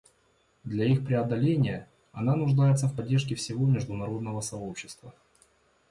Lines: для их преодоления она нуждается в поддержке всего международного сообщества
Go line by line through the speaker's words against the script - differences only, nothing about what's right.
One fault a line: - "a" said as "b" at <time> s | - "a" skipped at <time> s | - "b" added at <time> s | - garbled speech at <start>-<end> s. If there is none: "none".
none